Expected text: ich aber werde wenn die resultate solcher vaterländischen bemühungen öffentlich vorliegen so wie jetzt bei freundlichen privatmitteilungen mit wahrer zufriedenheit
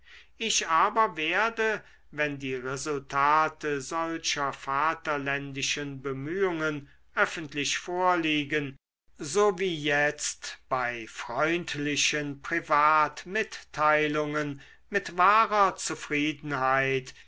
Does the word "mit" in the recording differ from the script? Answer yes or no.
no